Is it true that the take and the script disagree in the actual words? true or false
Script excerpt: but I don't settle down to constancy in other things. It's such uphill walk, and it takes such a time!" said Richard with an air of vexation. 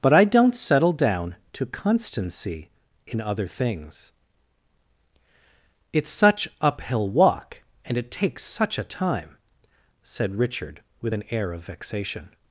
false